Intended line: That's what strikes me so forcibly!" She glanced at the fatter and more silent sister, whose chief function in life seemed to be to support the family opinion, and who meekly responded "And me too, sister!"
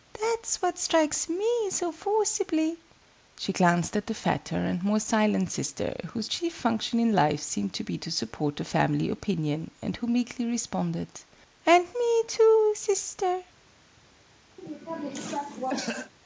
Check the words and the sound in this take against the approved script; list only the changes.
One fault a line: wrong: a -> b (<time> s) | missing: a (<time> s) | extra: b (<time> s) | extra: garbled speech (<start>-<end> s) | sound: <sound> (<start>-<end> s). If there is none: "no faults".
sound: cough (14.6-16.1 s)